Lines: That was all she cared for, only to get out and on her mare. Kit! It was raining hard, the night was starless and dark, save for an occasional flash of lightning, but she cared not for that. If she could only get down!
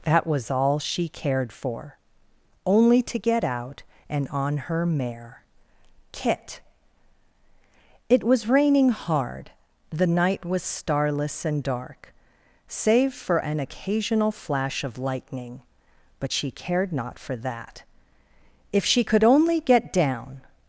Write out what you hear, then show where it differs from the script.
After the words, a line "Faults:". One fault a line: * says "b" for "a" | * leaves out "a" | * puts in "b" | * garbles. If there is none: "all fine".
That was all she cared for, only to get out and on her mare. Kit! It was raining hard, the night was starless and dark, save for an occasional flash of lightning, but she cared not for that. If she could only get down!
Faults:
all fine